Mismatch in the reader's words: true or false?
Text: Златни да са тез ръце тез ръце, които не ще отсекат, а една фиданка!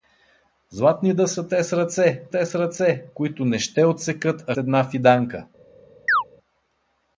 false